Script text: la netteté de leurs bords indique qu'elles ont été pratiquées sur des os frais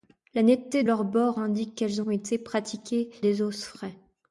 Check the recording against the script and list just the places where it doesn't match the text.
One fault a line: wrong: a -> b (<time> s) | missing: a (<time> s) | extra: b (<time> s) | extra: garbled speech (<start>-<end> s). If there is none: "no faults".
missing: de (0.8 s)
missing: sur (3.1 s)